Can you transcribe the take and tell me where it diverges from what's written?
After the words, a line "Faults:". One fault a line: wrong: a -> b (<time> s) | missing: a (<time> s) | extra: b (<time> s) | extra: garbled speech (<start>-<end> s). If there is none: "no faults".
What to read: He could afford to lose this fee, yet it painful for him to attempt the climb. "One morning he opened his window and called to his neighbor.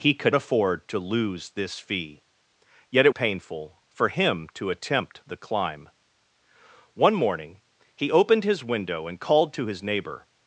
He could afford to lose this fee, yet it painful for him to attempt the climb. "One morning he opened his window and called to his neighbor.
Faults:
no faults